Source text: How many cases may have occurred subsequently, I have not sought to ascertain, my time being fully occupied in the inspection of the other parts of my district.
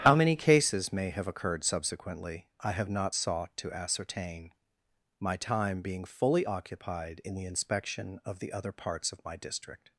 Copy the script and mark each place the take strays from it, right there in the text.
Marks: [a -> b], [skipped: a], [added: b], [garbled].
How many cases may have occurred subsequently, I have not sought to ascertain, my time being fully occupied in the inspection of the other parts of my district.